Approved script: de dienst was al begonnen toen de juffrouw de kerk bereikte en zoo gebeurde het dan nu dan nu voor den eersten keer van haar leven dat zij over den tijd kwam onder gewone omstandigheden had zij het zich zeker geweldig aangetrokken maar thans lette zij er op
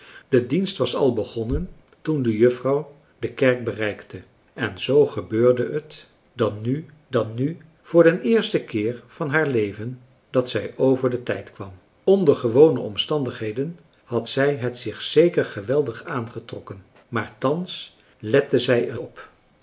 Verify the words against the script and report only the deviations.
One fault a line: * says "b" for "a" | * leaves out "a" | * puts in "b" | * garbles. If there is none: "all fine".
all fine